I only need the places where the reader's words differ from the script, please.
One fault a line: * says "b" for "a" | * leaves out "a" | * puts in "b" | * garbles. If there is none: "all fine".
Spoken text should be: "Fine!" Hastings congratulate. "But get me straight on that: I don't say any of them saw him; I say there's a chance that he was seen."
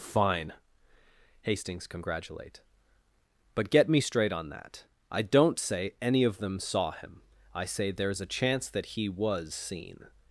all fine